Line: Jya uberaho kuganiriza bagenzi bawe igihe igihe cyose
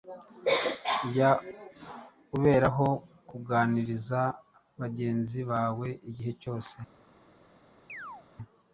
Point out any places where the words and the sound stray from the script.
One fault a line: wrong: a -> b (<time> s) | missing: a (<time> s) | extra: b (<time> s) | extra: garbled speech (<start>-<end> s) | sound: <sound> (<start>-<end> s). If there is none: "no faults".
missing: igihe (6.3 s)
sound: chirp (7.9-8.3 s)